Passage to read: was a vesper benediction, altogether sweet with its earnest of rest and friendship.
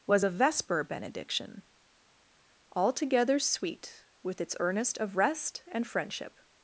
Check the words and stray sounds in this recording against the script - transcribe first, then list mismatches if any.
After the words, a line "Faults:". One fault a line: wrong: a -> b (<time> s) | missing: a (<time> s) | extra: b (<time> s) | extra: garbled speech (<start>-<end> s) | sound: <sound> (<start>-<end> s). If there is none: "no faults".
was a vesper benediction, altogether sweet with its earnest of rest and friendship.
Faults:
no faults